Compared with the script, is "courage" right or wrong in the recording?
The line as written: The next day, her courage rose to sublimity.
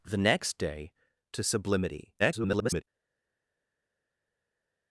wrong